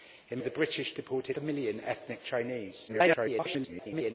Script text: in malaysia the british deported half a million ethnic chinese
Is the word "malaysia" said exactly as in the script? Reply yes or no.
no